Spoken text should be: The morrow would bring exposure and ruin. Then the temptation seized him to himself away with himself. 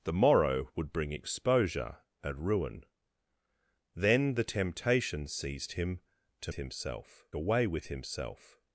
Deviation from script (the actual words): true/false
false